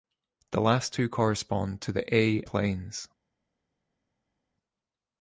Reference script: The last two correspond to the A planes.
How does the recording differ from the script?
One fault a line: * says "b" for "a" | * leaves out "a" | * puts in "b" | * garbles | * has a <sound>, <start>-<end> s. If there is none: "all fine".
all fine